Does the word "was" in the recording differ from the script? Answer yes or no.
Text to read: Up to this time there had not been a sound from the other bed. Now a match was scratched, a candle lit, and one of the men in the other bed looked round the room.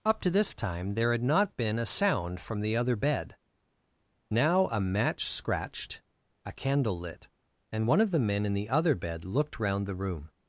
yes